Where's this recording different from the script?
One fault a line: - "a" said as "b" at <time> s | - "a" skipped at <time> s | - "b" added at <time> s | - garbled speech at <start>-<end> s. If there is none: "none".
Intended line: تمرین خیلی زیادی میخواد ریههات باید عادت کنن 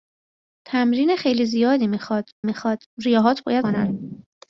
- "میخواد" added at 2.4 s
- "عادت" skipped at 3.7 s